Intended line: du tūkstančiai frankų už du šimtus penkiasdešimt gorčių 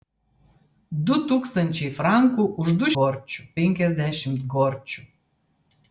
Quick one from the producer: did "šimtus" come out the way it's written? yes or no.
no